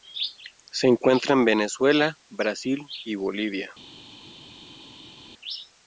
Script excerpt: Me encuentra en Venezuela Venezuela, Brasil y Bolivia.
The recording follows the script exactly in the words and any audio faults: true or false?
false